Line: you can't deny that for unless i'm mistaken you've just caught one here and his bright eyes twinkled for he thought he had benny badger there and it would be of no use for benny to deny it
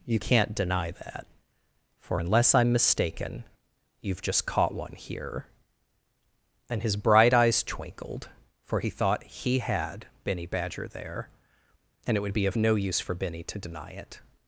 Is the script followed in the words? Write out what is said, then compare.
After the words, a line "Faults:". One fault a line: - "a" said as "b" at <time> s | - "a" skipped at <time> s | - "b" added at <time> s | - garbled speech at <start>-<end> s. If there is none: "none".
you can't deny that for unless i'm mistaken you've just caught one here and his bright eyes twinkled for he thought he had benny badger there and it would be of no use for benny to deny it
Faults:
none